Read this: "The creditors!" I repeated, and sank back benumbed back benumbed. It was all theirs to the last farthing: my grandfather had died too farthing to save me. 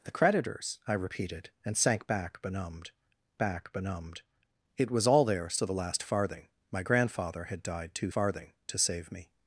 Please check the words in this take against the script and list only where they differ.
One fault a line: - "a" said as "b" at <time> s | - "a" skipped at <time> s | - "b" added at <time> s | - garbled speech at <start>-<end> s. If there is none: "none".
none